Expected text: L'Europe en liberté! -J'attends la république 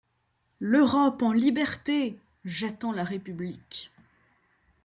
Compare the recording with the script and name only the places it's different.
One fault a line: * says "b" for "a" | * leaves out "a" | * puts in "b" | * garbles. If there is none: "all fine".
all fine